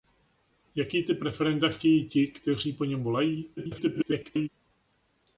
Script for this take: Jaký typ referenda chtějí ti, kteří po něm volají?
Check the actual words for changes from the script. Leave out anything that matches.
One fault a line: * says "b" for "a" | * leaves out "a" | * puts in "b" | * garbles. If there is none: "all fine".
* garbles